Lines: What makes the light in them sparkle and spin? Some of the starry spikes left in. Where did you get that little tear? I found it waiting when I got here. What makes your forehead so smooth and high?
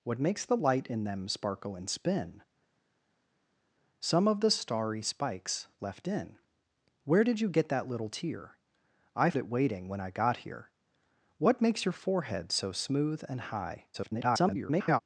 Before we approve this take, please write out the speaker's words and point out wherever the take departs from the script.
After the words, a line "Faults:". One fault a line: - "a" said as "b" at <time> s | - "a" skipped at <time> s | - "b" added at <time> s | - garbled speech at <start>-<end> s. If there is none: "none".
What makes the light in them sparkle and spin? Some of the starry spikes left in. Where did you get that little tear? I it waiting when I got here. What makes your forehead so smooth and high? [garbled]
Faults:
- "found" skipped at 9.3 s
- garbled speech at 13.9-15.0 s